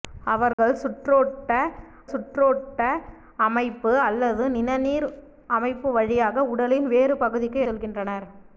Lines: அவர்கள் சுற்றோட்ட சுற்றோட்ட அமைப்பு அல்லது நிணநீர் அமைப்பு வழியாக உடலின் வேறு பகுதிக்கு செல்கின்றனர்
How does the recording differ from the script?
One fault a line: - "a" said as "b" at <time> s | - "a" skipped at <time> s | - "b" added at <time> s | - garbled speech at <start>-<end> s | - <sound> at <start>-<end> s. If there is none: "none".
- dropout at 0.5-0.6 s